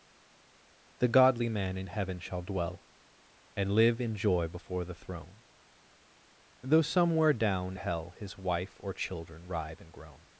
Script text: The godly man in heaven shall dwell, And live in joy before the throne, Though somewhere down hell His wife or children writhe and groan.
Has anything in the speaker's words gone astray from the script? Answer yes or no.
no